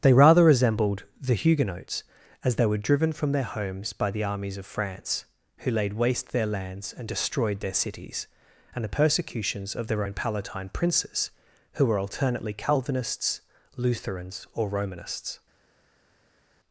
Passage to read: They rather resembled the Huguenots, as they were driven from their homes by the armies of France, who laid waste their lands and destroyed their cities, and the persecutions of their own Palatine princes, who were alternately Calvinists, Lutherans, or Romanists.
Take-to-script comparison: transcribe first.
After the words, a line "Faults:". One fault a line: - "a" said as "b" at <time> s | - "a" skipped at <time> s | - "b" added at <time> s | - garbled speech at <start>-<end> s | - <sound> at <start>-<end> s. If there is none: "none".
They rather resembled the Huguenots, as they were driven from their homes by the armies of France, who laid waste their lands and destroyed their cities, and the persecutions of their own Palatine princes, who were alternately Calvinists, Lutherans, or Romanists.
Faults:
none